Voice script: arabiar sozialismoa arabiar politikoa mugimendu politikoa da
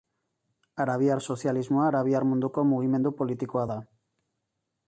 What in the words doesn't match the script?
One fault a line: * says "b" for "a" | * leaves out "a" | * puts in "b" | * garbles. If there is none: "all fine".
* says "munduko" for "politikoa"